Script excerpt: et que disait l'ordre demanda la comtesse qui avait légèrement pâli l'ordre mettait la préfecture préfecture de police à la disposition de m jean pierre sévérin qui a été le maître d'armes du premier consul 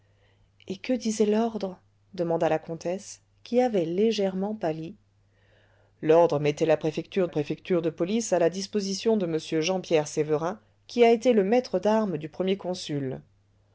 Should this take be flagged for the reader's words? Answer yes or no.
no